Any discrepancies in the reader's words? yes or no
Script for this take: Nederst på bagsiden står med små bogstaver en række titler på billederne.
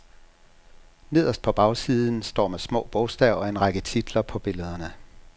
no